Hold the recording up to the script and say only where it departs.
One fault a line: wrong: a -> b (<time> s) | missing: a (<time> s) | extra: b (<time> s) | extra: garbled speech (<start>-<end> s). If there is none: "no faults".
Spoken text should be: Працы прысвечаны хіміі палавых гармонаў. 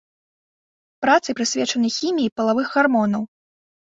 no faults